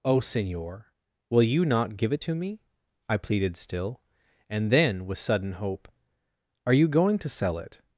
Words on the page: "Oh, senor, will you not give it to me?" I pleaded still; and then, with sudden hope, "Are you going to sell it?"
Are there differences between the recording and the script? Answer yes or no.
no